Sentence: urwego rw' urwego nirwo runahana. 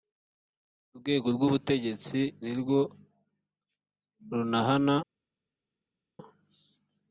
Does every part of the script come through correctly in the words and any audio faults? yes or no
no